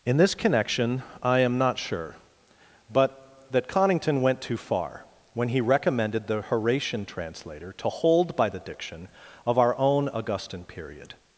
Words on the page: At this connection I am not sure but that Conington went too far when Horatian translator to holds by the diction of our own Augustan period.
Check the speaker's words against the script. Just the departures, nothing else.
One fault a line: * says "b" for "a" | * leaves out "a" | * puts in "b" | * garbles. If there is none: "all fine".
* says "In" for "At"
* puts in "he recommended the"
* says "hold" for "holds"